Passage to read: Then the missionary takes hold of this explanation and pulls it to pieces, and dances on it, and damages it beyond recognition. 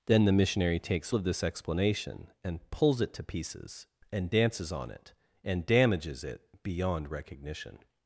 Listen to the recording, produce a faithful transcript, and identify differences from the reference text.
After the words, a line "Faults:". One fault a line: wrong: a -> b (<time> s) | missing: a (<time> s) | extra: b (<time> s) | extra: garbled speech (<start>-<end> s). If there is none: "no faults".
Then the missionary takes of this explanation and pulls it to pieces, and dances on it, and damages it beyond recognition.
Faults:
missing: hold (1.1 s)